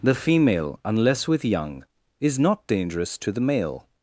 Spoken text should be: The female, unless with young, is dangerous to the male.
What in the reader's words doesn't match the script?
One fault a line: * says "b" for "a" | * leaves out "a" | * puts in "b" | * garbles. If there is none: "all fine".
* puts in "not"